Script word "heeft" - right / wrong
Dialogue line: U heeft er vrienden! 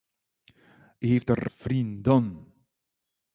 right